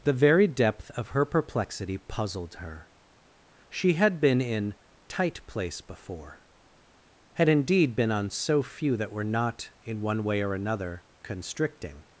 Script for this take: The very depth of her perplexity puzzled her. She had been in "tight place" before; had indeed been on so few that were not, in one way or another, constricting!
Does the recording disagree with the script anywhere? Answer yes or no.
no